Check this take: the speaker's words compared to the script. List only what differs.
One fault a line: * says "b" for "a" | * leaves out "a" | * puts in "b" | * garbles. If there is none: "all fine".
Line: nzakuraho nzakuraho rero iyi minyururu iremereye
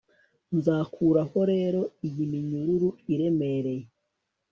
* leaves out "nzakuraho"